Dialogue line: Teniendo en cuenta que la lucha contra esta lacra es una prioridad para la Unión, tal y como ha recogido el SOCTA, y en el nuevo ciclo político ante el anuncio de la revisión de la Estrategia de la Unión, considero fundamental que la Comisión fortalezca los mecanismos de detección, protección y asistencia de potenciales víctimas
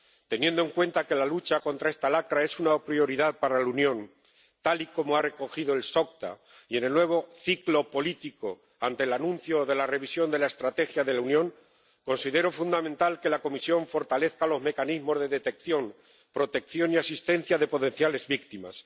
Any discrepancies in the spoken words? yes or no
no